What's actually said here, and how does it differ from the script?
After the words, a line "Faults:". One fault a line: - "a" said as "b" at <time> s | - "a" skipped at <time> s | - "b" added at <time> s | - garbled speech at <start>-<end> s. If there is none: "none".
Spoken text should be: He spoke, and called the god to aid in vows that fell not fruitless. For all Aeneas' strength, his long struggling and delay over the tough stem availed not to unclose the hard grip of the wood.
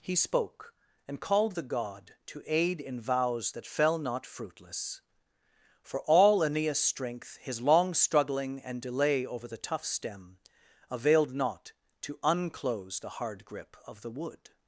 He spoke, and called the god to aid in vows that fell not fruitless. For all Aeneas' strength, his long struggling and delay over the tough stem availed not to unclose the hard grip of the wood.
Faults:
none